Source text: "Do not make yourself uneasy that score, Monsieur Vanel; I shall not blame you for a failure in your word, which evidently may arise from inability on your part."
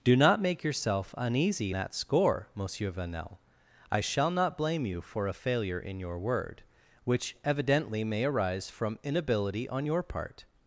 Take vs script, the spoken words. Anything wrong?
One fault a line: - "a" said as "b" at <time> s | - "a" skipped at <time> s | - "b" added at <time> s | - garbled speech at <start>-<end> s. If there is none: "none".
none